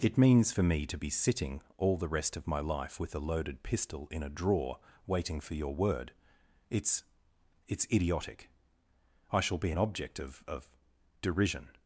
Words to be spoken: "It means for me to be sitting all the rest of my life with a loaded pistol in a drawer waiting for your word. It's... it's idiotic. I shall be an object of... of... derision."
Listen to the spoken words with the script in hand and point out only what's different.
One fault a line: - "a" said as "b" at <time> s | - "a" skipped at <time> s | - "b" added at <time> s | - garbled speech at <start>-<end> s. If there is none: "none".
none